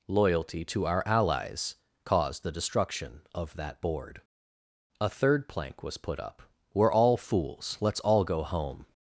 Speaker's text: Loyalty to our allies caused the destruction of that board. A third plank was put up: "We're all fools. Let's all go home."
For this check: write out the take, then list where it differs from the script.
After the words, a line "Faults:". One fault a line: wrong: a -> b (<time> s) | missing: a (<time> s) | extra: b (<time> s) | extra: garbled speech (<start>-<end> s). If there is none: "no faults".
Loyalty to our allies caused the destruction of that board. A third plank was put up: "We're all fools. Let's all go home."
Faults:
no faults